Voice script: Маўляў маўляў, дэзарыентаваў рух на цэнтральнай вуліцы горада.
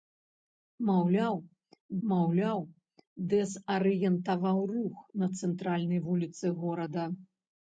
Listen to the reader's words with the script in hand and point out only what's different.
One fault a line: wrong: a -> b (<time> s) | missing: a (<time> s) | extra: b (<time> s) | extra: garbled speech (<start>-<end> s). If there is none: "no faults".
no faults